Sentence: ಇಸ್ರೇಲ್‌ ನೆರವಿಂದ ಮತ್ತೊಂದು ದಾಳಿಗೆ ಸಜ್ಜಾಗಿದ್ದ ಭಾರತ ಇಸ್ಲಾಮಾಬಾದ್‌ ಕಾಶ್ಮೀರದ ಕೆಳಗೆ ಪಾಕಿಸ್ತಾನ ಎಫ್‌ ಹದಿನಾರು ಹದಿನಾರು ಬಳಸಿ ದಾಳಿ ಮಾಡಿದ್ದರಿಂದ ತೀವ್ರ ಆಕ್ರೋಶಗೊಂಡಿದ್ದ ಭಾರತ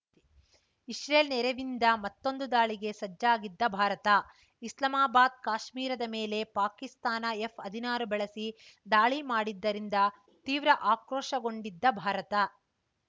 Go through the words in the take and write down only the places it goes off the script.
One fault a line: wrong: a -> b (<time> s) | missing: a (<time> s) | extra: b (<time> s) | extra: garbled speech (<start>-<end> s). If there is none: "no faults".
wrong: ಕೆಳಗೆ -> ಮೇಲೆ (6.1 s)
missing: ಹದಿನಾರು (8.1 s)